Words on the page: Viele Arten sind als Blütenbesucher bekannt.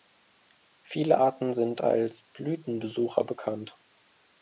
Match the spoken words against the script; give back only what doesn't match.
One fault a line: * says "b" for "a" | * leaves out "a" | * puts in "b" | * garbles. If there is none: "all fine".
all fine